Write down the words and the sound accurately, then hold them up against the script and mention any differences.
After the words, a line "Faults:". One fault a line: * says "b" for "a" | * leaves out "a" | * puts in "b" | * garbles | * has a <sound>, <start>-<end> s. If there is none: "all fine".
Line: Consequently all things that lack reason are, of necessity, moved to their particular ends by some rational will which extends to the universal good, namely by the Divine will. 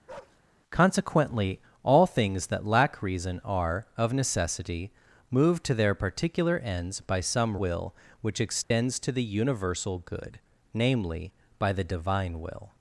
Consequently all things that lack reason are, of necessity, moved to their particular ends by some will which extends to the universal good, namely by the Divine will.
Faults:
* has a bark, 0.1-0.4 s
* leaves out "rational"
* has a dropout, 8.6-8.7 s